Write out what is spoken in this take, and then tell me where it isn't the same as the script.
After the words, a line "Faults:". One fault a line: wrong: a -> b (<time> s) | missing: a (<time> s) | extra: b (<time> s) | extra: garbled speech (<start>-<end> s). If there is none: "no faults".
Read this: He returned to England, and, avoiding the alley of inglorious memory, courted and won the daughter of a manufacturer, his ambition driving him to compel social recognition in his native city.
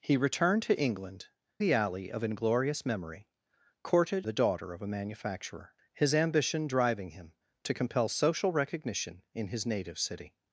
He returned to England, the alley of inglorious memory, courted the daughter of a manufacturer, his ambition driving him to compel social recognition in his native city.
Faults:
missing: and avoiding (1.3 s)
missing: and won (4.3 s)